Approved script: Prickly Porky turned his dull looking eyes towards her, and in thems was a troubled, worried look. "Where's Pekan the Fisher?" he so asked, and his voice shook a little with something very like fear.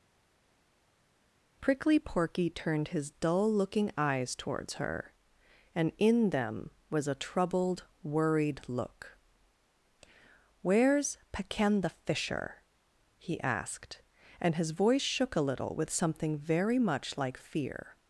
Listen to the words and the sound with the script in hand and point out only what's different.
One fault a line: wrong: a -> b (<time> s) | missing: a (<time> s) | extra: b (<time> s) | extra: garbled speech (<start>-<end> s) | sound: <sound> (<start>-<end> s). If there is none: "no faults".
wrong: thems -> them (6.3 s)
missing: so (13.4 s)
extra: much (16.8 s)